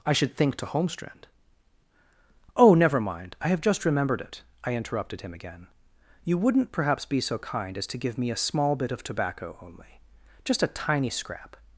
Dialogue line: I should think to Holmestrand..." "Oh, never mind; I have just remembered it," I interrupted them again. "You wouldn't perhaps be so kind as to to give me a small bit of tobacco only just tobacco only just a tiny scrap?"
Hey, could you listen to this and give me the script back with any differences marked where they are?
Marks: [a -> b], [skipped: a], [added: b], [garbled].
I should think to Holmestrand..." "Oh, never mind; I have just remembered it," I interrupted [them -> him] again. "You wouldn't perhaps be so kind as to [skipped: to] give me a small bit of tobacco only just [skipped: tobacco only just] a tiny scrap?"